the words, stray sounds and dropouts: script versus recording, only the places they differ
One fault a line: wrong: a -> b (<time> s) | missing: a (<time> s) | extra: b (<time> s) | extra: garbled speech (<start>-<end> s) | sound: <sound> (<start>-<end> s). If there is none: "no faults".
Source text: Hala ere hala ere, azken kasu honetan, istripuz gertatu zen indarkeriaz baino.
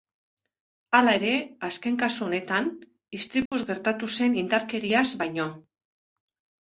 missing: hala ere (1.3 s)
sound: dropout (3.5-3.5 s)